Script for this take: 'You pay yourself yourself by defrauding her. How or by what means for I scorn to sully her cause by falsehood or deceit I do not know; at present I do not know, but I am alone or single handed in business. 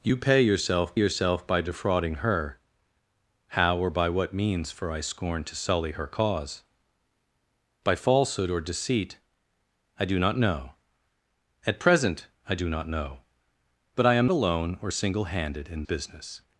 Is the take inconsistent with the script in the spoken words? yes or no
no